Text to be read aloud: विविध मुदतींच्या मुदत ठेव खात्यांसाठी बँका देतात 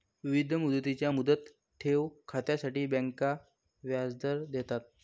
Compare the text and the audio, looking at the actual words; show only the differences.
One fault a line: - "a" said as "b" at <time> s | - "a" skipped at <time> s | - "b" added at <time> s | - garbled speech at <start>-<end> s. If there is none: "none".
- "व्याजदर" added at 3.8 s